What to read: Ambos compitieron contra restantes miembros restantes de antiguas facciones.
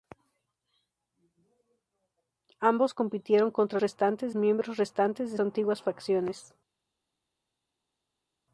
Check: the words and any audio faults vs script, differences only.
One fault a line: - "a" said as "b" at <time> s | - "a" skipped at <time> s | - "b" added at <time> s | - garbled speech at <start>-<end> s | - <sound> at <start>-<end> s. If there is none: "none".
none